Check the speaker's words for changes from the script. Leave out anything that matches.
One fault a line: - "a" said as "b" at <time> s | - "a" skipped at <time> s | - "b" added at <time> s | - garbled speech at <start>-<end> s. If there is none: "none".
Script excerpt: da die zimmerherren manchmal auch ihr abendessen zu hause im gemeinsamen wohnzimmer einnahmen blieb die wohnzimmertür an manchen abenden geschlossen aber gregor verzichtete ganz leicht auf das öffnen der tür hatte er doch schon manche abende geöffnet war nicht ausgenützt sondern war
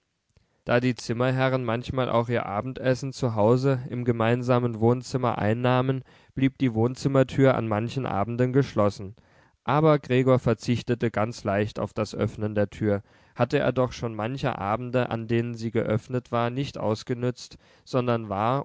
- "an denen sie" added at 15.1 s